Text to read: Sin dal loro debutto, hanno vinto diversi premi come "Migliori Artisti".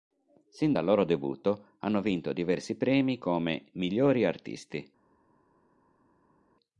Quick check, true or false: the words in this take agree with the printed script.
true